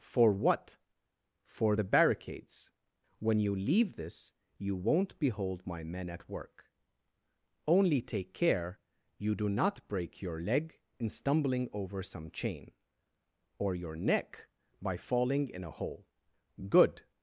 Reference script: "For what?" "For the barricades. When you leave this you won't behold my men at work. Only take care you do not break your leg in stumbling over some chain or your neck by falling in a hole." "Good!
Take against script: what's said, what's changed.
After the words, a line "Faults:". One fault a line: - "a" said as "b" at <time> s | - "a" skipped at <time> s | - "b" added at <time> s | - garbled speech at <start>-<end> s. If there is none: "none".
"For what?" "For the barricades. When you leave this you won't behold my men at work. Only take care you do not break your leg in stumbling over some chain or your neck by falling in a hole." "Good!
Faults:
none